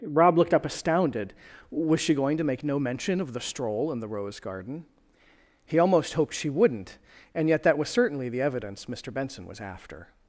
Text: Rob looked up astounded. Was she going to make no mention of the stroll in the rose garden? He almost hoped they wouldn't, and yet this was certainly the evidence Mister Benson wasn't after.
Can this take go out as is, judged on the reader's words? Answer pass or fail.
fail